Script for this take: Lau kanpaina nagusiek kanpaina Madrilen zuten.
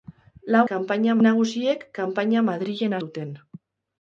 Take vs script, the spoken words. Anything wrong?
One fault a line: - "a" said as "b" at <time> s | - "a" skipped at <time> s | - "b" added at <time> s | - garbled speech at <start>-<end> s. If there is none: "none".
none